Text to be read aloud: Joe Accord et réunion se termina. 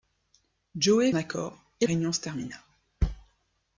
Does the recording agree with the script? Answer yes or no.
yes